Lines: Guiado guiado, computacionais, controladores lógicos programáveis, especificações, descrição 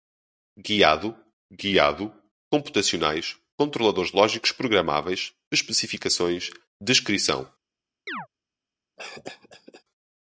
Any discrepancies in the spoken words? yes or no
no